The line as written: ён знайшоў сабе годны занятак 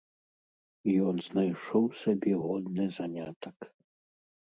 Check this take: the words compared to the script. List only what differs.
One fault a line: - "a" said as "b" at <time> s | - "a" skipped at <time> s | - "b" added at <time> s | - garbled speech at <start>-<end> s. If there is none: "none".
none